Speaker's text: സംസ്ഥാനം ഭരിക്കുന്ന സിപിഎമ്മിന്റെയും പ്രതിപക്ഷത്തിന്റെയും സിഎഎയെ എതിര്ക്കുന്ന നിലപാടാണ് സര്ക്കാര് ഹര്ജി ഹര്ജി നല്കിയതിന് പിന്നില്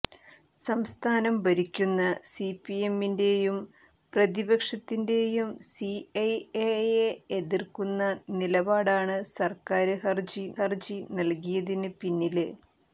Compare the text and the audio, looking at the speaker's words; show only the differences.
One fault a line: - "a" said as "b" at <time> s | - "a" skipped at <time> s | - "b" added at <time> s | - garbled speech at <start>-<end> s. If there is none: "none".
none